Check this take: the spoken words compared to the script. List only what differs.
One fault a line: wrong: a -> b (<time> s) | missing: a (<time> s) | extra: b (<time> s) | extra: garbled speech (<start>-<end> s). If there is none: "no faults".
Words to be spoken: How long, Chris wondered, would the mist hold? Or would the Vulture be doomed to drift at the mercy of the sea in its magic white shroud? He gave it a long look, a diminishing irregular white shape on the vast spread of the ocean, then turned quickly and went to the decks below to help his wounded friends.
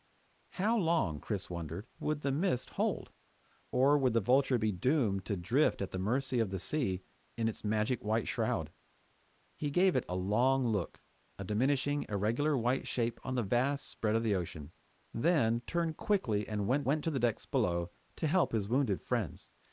extra: went (16.8 s)